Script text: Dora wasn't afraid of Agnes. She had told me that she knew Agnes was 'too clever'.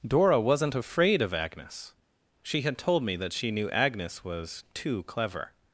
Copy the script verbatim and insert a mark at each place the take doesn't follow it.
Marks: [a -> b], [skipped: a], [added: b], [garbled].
Dora wasn't afraid of Agnes. She had told me that she knew Agnes was 'too clever'.